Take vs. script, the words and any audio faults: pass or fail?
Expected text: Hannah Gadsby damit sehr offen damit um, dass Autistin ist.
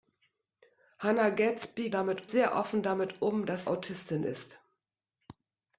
pass